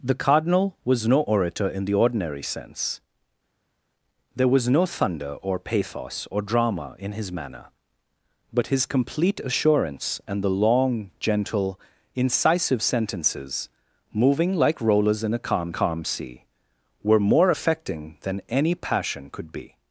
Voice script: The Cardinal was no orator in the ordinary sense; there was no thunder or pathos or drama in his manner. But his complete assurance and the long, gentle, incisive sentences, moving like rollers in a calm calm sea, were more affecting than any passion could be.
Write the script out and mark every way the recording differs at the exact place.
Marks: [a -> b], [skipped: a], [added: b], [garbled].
The Cardinal was no orator in the ordinary sense; there was no thunder or pathos or drama in his manner. But his complete assurance and the long, gentle, incisive sentences, moving like rollers in a calm calm sea, were more affecting than any passion could be.